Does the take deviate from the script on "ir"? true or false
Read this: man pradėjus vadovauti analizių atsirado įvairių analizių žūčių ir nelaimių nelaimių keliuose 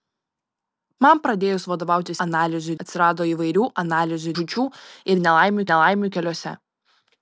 false